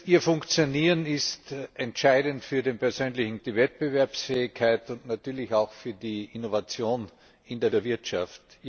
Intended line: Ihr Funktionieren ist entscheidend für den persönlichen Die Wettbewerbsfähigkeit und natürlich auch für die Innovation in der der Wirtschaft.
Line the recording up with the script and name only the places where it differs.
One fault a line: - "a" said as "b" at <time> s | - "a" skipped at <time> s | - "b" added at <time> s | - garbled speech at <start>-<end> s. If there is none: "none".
none